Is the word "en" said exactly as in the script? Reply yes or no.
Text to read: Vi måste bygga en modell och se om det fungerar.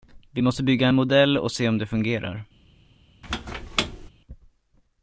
yes